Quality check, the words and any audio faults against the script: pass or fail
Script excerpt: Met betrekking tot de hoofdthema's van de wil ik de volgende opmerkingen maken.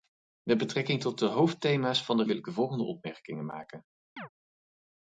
fail